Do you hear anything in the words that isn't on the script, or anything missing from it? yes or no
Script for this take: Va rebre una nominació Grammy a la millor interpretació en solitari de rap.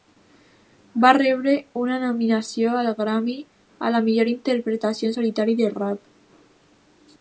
yes